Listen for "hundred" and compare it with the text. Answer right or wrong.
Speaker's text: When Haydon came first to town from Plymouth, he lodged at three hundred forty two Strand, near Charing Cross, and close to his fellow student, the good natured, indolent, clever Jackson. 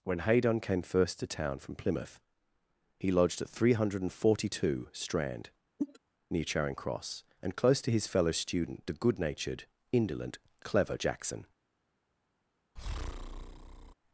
right